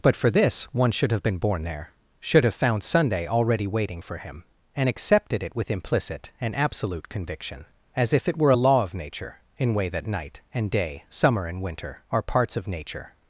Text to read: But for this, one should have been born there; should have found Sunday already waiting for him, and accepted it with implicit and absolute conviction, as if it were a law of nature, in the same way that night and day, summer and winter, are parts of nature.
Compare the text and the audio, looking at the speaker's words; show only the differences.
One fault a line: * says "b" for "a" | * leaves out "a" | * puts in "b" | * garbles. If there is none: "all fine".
* leaves out "the same"